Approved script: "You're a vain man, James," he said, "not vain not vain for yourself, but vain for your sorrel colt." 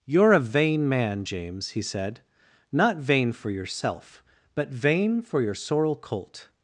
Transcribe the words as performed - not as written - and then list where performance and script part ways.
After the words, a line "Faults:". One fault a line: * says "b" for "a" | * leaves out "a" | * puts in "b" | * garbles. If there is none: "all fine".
"You're a vain man, James," he said, "not vain for yourself, but vain for your sorrel colt."
Faults:
* leaves out "not vain"